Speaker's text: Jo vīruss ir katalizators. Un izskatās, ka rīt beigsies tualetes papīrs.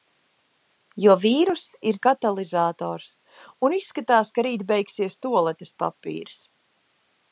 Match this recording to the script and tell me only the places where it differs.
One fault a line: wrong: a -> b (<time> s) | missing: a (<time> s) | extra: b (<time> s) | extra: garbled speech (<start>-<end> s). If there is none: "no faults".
no faults